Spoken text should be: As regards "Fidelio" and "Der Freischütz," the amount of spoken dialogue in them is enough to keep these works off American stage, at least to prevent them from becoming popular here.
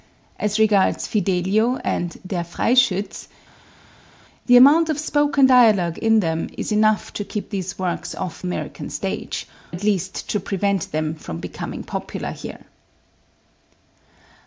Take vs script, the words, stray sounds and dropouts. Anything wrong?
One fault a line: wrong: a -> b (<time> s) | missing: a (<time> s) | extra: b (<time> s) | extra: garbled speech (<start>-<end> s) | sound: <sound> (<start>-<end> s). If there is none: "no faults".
no faults